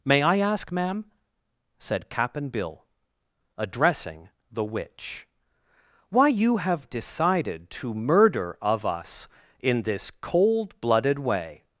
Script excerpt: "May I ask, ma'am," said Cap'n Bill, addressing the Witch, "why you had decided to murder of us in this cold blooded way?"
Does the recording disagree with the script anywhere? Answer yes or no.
yes